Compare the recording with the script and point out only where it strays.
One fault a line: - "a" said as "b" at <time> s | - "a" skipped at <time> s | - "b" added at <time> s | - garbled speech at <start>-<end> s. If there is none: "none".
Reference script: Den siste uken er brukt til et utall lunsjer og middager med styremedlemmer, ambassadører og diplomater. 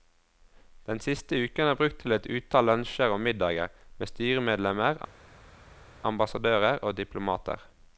none